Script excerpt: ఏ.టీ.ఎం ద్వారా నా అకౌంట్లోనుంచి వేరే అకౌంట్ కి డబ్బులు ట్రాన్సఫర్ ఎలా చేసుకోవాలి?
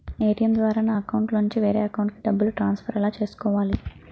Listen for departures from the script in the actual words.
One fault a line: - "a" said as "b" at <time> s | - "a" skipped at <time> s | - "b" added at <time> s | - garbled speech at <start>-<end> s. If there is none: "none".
none